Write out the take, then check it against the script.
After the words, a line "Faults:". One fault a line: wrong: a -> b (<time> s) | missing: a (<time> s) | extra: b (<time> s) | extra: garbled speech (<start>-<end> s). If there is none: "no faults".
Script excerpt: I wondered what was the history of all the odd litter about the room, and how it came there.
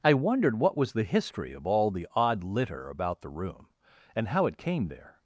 I wondered what was the history of all the odd litter about the room, and how it came there.
Faults:
no faults